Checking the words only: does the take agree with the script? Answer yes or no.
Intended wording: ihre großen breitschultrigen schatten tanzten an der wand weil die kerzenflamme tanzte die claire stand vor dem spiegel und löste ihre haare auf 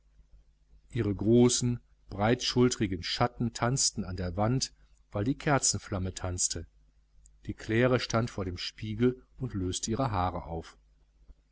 yes